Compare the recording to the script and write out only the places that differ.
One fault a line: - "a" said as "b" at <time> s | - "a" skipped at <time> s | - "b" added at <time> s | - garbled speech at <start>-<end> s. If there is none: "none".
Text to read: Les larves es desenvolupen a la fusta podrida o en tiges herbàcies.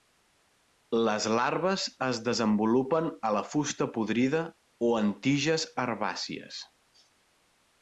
none